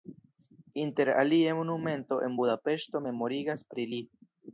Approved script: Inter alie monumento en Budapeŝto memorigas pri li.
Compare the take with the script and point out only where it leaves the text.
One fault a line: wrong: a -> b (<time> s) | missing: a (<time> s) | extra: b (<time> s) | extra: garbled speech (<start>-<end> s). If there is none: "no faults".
no faults